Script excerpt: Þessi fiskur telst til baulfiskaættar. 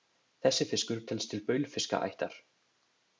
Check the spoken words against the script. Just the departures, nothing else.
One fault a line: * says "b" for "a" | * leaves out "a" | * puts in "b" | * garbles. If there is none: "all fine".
all fine